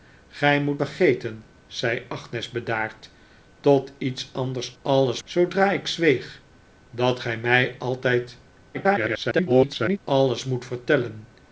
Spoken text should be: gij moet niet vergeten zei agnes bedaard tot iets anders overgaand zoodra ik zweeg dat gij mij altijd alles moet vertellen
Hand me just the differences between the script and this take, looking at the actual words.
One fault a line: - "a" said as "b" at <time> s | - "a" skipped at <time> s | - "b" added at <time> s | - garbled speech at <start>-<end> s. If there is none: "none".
- "niet" skipped at 0.8 s
- "overgaand" said as "alles" at 4.8 s
- garbled speech at 8.7-10.0 s